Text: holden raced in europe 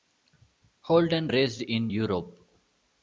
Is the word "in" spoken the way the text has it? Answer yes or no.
yes